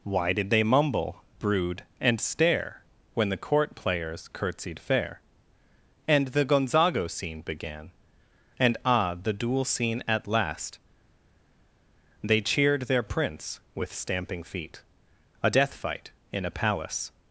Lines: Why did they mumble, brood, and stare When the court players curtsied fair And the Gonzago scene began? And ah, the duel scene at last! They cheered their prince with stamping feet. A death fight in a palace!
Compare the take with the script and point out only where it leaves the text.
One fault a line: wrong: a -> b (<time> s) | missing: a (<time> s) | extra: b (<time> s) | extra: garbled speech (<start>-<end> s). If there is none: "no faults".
no faults